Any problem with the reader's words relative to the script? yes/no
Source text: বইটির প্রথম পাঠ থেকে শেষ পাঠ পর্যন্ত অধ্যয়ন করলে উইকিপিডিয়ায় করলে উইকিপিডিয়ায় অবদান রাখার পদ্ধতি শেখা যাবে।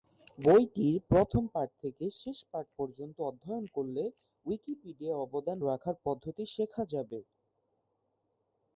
yes